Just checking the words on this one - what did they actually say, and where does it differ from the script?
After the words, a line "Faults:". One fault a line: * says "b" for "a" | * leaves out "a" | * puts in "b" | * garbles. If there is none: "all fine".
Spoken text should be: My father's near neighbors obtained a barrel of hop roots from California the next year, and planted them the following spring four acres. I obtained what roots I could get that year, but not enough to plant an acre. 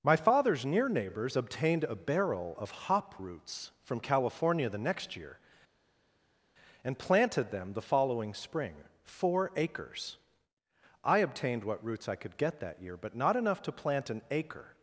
My father's near neighbors obtained a barrel of hop roots from California the next year, and planted them the following spring four acres. I obtained what roots I could get that year, but not enough to plant an acre.
Faults:
all fine